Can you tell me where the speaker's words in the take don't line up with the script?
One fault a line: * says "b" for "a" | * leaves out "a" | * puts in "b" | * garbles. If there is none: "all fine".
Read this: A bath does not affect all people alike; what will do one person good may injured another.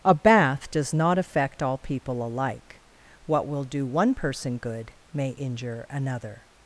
* says "injure" for "injured"